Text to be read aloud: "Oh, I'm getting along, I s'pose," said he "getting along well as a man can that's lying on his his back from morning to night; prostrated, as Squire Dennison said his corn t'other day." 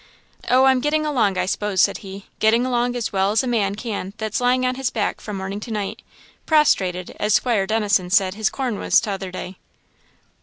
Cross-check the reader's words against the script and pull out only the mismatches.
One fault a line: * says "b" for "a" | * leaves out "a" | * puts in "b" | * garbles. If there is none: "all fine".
* puts in "as"
* leaves out "his"
* puts in "was"